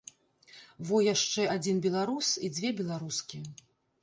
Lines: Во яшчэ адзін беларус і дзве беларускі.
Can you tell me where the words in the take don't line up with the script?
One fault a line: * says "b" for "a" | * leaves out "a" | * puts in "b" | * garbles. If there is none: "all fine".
all fine